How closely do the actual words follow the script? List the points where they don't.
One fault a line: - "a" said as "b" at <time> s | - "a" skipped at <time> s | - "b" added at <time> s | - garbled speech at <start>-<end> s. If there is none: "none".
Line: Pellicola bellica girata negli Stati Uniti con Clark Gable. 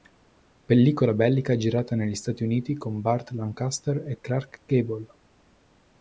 - "Burt Lancaster e" added at 3.0 s